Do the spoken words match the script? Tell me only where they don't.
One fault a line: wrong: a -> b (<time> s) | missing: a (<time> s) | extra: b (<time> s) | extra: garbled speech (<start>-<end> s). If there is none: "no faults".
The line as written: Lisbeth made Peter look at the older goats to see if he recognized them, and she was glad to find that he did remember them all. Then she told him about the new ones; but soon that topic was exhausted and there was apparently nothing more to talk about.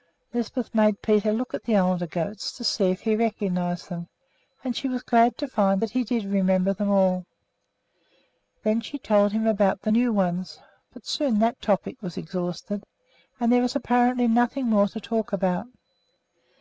no faults